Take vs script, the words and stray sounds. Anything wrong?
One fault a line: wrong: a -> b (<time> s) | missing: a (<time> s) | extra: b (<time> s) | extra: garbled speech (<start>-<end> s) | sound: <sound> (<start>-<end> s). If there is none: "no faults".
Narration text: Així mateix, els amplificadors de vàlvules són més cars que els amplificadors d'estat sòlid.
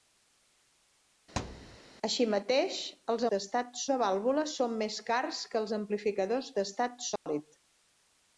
sound: thud (1.4-1.8 s)
wrong: amplificadors -> d'estat (3.3 s)
sound: dropout (7.2-7.3 s)